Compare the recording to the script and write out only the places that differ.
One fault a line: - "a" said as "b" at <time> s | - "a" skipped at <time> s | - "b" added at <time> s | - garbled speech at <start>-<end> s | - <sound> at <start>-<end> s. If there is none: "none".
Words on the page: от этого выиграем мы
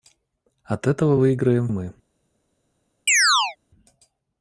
- chirp at 3.1-3.6 s